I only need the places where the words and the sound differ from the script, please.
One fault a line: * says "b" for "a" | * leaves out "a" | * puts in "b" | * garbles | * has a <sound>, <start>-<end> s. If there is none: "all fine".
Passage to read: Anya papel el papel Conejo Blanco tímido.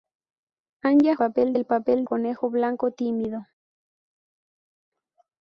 all fine